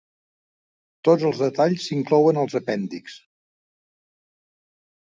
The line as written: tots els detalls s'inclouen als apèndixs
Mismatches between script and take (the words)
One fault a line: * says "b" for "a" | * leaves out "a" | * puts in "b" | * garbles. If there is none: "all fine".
all fine